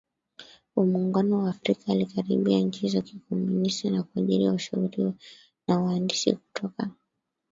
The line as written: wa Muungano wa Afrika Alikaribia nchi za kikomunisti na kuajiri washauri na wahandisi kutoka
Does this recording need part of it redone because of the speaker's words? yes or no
no